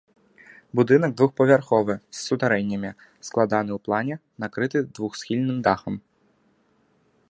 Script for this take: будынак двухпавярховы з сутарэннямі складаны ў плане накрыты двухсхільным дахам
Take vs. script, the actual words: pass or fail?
pass